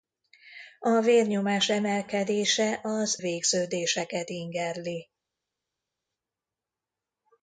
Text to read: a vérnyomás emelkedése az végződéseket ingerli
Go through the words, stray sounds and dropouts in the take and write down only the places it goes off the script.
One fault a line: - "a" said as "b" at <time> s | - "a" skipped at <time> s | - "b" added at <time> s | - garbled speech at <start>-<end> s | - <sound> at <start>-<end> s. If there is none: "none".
none